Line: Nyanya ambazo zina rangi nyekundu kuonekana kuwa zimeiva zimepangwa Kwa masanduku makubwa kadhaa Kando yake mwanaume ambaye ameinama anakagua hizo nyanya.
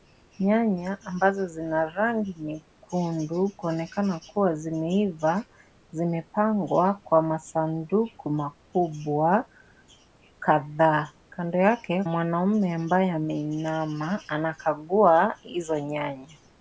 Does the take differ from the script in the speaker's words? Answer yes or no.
no